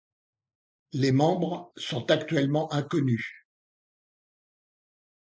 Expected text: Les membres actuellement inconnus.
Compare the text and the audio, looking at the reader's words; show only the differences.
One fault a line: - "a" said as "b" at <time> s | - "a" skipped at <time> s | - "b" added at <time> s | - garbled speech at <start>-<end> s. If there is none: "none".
- "sont" added at 1.7 s